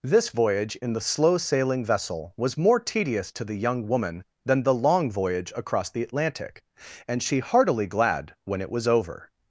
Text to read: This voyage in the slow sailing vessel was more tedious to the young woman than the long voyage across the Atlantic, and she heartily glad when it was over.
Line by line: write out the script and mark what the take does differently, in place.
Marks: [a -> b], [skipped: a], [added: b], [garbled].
This voyage in the slow sailing vessel was more tedious to the young woman than the long voyage across the Atlantic, and she heartily glad when it was over.